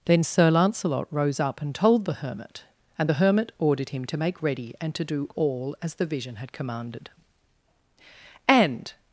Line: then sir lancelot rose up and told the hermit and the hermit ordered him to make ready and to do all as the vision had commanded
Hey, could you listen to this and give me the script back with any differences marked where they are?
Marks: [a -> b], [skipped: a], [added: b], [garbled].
then sir lancelot rose up and told the hermit and the hermit ordered him to make ready and to do all as the vision had commanded [added: and]